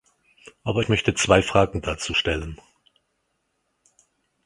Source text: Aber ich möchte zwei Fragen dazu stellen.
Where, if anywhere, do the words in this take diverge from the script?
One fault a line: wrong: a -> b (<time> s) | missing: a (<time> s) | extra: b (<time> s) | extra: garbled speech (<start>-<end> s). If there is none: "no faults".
no faults